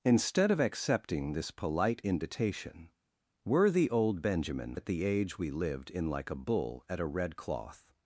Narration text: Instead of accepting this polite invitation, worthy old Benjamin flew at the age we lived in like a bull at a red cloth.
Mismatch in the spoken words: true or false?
true